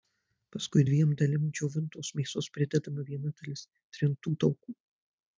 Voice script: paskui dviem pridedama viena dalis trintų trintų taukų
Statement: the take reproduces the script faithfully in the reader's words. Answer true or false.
false